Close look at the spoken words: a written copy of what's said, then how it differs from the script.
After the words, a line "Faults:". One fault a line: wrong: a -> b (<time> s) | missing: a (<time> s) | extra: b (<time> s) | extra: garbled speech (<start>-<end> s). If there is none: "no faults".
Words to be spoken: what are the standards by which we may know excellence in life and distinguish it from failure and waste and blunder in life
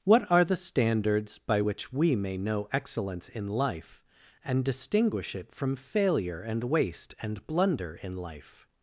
what are the standards by which we may know excellence in life and distinguish it from failure and waste and blunder in life
Faults:
no faults